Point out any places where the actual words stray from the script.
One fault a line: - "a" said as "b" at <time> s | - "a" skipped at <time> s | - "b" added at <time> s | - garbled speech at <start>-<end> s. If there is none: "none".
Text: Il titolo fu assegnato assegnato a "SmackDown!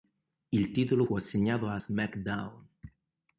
- "assegnato" skipped at 1.7 s